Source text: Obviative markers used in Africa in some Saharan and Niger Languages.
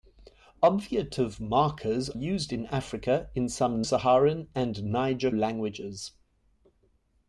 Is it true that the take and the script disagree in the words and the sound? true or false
false